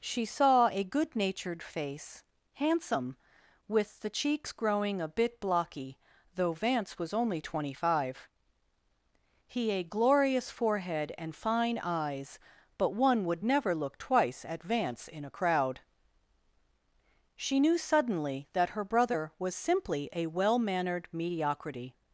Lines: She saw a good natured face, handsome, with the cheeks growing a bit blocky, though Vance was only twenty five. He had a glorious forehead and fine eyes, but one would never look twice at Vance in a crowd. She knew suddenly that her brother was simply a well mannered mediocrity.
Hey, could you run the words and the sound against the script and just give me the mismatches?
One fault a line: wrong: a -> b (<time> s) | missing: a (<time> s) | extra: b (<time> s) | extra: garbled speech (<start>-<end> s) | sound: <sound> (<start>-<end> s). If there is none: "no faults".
missing: had (9.7 s)